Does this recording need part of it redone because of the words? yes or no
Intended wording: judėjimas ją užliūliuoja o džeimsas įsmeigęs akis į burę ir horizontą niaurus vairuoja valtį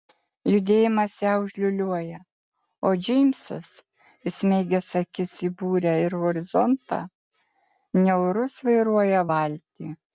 no